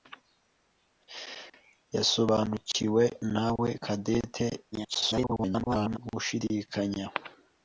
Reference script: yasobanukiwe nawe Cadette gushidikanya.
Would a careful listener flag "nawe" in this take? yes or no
no